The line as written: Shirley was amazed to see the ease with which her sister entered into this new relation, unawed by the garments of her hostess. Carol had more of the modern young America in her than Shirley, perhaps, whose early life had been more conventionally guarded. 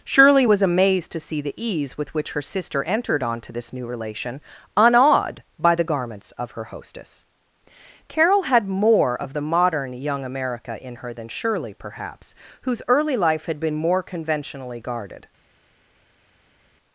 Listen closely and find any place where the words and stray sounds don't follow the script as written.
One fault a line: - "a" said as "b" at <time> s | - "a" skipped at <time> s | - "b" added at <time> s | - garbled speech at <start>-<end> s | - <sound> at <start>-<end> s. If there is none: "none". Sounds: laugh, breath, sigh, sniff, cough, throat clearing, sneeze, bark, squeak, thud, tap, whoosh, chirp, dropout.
- "into" said as "onto" at 3.2 s